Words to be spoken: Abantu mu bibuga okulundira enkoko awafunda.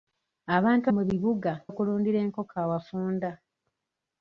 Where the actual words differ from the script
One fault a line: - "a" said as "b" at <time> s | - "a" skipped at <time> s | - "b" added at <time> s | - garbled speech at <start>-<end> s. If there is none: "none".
none